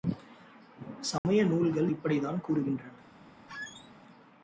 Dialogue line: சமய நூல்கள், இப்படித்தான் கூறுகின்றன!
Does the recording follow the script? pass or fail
pass